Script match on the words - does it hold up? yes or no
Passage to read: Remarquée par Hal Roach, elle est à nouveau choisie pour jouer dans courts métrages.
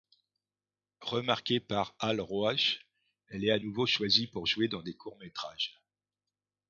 no